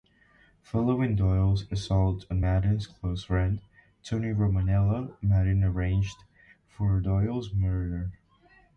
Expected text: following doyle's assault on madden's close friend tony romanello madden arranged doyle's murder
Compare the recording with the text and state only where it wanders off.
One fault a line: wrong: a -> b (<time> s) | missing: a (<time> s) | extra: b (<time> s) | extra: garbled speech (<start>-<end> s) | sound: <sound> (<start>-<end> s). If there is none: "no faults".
extra: for (6.7 s)